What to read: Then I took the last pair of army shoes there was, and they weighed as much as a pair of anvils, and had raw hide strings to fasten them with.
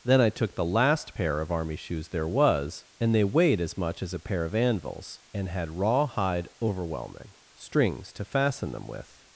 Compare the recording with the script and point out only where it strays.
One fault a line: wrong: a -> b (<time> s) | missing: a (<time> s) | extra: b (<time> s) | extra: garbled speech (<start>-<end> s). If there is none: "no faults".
extra: overwhelming (6.6 s)